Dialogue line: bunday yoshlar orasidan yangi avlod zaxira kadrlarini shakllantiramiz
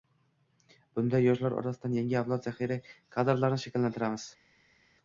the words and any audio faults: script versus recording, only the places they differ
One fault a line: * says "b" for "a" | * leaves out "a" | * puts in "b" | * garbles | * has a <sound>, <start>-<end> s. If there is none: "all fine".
all fine